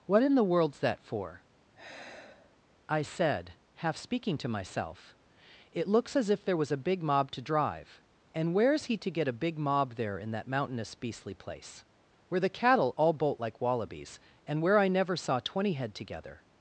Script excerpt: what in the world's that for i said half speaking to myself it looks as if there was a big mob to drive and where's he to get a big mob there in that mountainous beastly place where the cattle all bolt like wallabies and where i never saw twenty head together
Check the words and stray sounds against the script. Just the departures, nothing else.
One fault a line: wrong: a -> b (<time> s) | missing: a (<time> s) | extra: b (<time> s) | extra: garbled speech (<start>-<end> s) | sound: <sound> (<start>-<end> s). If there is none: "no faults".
sound: sigh (1.7-2.6 s)